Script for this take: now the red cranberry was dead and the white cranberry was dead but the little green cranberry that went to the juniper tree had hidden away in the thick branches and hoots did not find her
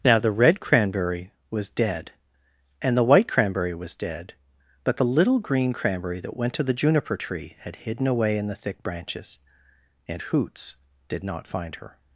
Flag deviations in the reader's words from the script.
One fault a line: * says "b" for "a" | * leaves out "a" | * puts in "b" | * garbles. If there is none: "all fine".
all fine